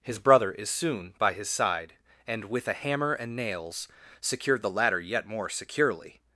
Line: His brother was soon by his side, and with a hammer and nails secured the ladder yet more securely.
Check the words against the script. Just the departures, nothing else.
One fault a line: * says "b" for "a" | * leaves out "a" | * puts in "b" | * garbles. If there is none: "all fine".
* says "is" for "was"